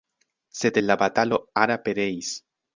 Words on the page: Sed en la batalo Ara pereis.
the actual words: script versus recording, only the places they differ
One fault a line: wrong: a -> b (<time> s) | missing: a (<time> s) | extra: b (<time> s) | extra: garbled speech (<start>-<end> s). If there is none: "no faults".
no faults